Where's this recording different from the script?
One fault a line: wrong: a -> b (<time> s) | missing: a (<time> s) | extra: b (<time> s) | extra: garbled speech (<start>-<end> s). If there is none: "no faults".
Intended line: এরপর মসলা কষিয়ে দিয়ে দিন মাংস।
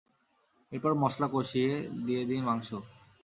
no faults